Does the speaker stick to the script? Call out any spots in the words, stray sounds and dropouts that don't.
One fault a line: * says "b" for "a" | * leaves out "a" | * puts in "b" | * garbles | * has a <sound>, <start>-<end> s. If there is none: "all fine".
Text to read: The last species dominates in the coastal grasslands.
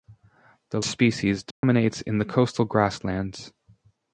* leaves out "last"
* has a dropout, 1.5-1.6 s